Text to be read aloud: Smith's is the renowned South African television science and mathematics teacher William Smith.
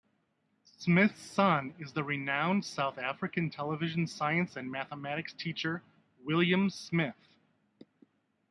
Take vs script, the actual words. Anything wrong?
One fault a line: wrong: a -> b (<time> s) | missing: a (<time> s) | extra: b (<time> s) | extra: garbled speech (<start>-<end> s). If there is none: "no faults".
extra: son (1.2 s)